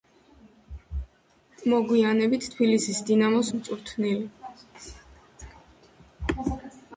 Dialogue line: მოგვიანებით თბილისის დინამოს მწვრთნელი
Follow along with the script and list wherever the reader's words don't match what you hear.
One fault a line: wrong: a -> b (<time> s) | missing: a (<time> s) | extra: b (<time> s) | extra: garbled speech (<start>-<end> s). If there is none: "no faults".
no faults